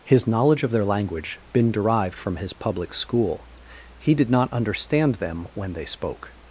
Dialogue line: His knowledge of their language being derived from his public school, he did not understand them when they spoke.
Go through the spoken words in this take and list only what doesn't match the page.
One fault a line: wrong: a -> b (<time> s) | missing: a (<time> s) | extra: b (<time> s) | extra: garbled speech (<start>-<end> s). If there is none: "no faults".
wrong: being -> been (1.5 s)